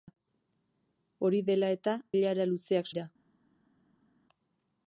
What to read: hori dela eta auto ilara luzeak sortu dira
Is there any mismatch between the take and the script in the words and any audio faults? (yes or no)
yes